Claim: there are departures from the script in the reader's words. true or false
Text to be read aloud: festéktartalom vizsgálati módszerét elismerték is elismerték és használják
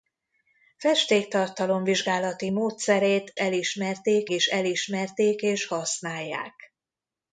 false